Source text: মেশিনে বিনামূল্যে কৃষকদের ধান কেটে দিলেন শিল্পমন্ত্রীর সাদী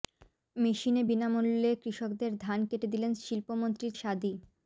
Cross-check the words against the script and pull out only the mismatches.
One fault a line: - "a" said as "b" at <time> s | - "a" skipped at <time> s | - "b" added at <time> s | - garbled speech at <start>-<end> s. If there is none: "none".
none